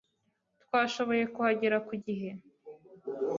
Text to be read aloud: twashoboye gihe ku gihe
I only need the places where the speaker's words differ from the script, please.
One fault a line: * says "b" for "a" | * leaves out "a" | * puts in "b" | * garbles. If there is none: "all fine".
* says "kuhagera" for "gihe"